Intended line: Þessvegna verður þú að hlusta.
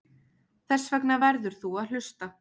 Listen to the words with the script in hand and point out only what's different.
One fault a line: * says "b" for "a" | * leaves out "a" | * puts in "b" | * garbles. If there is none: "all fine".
all fine